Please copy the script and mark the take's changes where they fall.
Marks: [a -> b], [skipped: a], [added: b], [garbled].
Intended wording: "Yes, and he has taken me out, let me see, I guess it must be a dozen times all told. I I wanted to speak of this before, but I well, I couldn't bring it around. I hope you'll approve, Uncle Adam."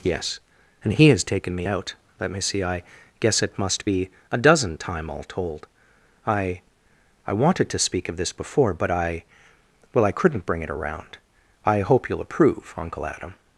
"Yes, and he has taken me out, let me see, I guess it must be a dozen [times -> time] all told. I I wanted to speak of this before, but I well, I couldn't bring it around. I hope you'll approve, Uncle Adam."